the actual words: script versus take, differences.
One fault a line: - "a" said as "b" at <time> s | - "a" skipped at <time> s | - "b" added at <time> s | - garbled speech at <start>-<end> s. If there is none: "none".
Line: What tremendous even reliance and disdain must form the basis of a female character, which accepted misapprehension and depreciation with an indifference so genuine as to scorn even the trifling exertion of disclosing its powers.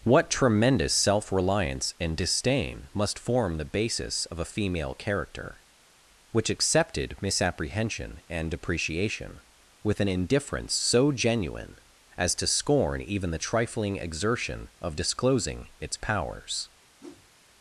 - "even" said as "self" at 0.9 s